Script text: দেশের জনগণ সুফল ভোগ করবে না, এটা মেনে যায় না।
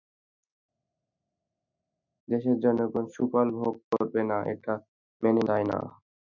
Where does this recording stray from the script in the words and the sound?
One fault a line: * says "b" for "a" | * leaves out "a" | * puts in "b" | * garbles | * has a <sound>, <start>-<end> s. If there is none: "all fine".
all fine